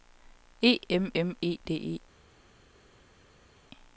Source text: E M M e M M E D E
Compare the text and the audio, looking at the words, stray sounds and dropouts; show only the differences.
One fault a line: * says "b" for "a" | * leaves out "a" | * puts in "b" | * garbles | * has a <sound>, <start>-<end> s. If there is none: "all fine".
* leaves out "M M E"